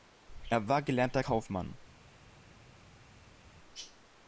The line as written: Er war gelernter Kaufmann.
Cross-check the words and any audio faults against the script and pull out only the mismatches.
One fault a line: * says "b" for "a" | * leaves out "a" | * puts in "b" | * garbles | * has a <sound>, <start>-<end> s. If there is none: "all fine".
all fine